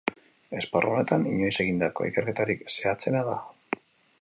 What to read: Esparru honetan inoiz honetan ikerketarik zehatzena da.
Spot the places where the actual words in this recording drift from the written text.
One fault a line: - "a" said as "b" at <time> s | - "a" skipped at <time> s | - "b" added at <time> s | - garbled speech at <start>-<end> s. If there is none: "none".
- "honetan" said as "egindako" at 1.6 s